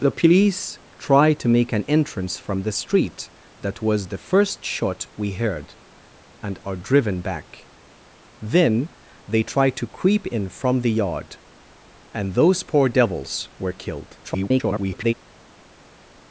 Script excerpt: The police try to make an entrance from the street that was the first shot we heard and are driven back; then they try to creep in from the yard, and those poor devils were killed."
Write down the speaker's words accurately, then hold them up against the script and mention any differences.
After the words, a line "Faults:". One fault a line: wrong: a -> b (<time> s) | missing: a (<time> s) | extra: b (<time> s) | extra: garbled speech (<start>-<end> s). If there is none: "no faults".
The police try to make an entrance from the street that was the first shot we heard and are driven back; then they try to creep in from the yard, and those poor devils were killed." [garbled]
Faults:
extra: garbled speech (14.2-15.1 s)